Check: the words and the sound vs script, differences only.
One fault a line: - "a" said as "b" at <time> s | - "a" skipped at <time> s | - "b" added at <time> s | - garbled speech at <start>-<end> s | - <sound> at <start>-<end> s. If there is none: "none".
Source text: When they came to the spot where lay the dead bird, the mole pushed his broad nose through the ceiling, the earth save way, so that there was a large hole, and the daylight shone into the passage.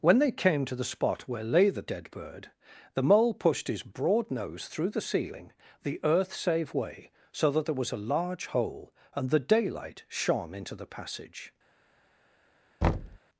- thud at 12.8-13.2 s